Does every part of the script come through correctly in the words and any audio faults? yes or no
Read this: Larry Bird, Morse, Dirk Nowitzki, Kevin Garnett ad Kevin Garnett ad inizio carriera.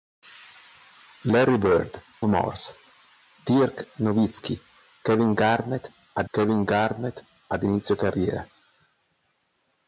yes